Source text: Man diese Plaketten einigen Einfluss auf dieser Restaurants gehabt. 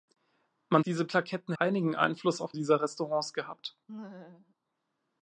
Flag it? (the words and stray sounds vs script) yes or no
yes